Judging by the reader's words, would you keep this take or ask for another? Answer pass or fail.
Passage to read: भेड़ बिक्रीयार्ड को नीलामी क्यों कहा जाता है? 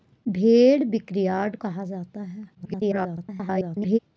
fail